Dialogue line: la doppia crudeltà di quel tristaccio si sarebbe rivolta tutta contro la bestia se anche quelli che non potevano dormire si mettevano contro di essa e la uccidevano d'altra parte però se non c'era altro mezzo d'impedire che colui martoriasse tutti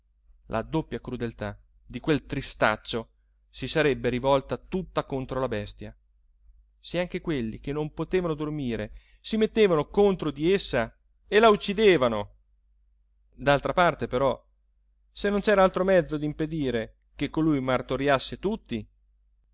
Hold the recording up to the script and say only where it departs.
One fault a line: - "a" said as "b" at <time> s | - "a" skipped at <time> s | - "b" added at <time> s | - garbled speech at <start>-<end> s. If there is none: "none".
none